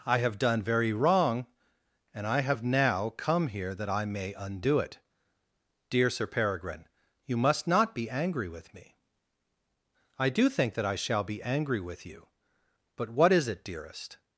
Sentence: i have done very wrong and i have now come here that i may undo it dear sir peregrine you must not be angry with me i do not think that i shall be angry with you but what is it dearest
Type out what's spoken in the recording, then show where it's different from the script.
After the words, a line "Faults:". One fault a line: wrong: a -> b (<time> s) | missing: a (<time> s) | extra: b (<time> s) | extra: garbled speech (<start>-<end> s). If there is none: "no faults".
i have done very wrong and i have now come here that i may undo it dear sir peregrine you must not be angry with me i do think that i shall be angry with you but what is it dearest
Faults:
missing: not (10.5 s)